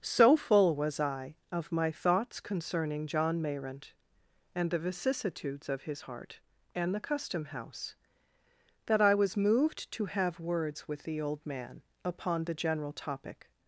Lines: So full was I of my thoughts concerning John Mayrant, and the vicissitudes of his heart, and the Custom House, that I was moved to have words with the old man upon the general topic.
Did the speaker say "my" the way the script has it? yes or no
yes